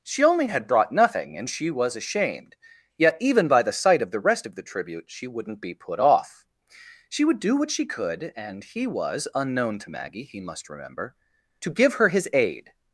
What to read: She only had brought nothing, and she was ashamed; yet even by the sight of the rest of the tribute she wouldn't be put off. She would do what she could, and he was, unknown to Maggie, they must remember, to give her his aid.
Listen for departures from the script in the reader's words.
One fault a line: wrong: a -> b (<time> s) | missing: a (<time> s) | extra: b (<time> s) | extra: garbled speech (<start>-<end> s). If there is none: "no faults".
wrong: they -> he (10.2 s)